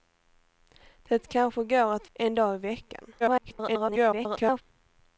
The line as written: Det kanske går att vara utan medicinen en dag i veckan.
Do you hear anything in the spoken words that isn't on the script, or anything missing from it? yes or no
yes